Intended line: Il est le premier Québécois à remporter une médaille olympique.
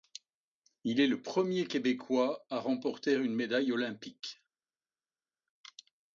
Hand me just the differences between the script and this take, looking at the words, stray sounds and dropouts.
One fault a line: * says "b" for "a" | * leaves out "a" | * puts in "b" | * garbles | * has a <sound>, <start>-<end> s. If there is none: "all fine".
all fine